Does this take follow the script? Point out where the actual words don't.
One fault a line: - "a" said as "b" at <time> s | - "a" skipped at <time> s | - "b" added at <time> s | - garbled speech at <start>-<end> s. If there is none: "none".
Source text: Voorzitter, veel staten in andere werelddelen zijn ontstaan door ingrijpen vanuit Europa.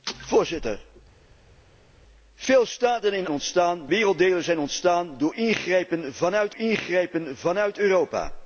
- "andere" said as "ontstaan" at 3.3 s
- "ingrijpen vanuit" added at 6.6 s